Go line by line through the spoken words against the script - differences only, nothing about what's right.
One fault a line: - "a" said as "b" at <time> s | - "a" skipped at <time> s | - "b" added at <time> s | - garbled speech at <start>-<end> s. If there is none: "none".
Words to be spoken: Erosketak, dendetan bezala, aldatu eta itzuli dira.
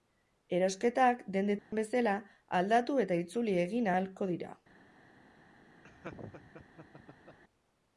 - "egin ahalko" added at 3.7 s